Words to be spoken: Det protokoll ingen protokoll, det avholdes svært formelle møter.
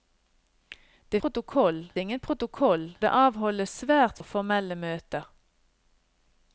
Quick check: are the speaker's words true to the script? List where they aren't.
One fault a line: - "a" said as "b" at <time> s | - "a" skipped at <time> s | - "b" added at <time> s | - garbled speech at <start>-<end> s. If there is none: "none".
none